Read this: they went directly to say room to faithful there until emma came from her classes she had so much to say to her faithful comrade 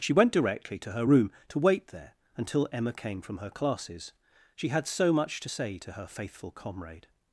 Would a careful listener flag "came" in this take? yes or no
no